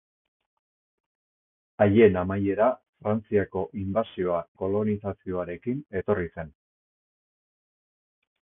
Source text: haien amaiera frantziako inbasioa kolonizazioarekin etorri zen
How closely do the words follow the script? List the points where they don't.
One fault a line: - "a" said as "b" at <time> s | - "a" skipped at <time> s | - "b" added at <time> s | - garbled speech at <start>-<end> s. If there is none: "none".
none